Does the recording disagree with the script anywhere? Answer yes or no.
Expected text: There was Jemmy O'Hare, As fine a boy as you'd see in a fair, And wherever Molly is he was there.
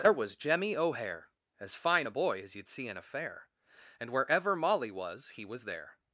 yes